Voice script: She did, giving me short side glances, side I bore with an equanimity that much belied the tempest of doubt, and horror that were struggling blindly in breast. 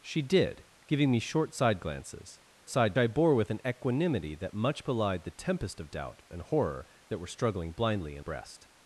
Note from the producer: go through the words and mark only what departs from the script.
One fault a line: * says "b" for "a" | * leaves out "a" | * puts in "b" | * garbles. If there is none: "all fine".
all fine